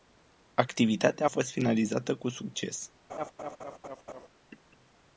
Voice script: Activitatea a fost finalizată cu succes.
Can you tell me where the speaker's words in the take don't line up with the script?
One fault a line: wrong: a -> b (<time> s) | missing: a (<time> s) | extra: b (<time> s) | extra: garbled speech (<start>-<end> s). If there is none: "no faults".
no faults